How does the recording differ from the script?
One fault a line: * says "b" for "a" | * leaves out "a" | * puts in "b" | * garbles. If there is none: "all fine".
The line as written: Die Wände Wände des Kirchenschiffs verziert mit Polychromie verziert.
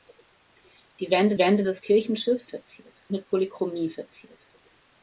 all fine